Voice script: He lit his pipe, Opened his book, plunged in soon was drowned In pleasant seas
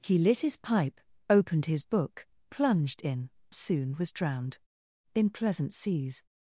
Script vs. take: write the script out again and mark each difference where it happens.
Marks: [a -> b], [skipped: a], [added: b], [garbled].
He lit his pipe, Opened his book, plunged in soon was drowned In pleasant seas